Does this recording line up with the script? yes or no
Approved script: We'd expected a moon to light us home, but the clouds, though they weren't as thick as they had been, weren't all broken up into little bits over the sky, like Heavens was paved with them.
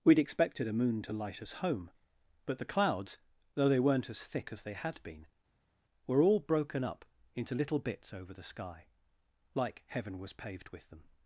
no